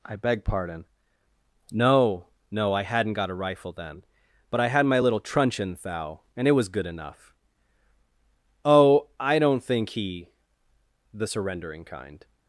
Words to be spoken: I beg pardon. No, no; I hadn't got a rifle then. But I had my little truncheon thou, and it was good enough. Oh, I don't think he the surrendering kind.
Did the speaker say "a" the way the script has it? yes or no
yes